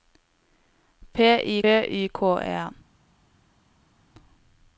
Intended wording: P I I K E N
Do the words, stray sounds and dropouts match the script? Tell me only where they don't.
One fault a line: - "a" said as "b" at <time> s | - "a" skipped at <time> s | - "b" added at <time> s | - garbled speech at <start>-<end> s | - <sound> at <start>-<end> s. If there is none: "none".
none